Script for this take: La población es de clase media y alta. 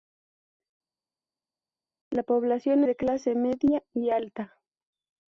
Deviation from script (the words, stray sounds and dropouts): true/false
true